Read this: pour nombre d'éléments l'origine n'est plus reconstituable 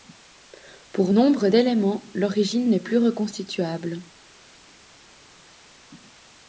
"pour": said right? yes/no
yes